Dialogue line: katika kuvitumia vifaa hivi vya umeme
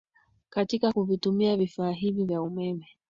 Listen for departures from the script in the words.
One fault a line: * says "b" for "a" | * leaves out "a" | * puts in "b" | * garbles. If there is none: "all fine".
all fine